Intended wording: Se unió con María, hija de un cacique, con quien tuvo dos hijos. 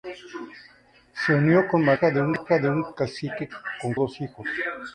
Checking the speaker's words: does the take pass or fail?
fail